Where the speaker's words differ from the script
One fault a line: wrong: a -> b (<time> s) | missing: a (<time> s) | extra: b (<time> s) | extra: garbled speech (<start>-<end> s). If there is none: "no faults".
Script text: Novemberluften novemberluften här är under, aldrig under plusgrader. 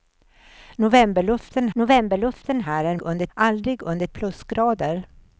no faults